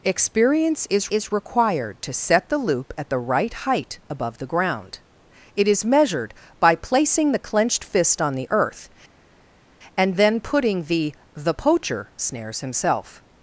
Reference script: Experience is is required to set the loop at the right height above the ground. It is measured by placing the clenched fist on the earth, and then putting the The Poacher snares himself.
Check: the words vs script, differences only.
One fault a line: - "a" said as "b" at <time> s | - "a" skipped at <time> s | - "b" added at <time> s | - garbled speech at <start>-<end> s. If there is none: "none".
none